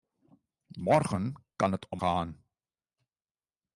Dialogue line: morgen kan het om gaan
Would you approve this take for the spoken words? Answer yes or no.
yes